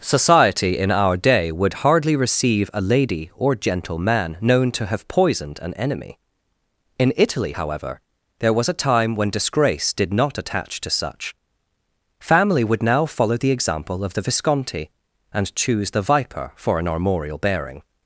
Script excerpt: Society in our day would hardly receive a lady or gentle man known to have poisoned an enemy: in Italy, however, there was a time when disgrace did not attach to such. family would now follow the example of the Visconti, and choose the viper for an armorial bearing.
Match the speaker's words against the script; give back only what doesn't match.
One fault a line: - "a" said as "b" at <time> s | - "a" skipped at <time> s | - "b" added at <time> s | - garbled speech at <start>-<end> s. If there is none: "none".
none